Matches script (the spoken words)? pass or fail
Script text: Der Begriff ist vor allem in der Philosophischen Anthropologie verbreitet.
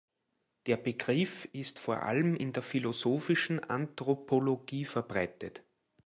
pass